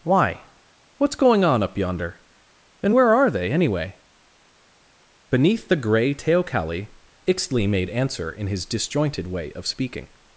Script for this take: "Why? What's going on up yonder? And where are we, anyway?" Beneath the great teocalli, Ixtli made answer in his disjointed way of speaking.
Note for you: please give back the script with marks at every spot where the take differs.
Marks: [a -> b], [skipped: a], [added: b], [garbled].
"Why? What's going on up yonder? And where are [we, -> they] anyway?" Beneath the [great -> grey] teocalli, Ixtli made answer in his disjointed way of speaking.